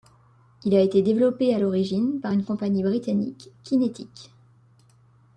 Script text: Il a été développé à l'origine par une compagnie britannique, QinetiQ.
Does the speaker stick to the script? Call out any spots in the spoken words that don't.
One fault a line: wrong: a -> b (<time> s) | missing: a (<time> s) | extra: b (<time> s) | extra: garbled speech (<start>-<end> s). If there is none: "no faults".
no faults